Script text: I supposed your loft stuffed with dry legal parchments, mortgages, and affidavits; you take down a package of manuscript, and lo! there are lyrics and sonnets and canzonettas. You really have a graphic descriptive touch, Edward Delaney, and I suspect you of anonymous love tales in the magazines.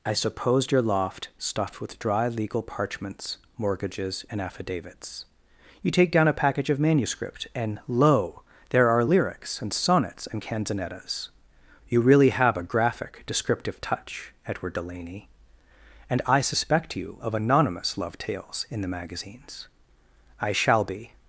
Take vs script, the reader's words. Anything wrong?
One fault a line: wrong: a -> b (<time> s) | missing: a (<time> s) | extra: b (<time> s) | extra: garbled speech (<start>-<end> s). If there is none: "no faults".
extra: I shall be (20.4 s)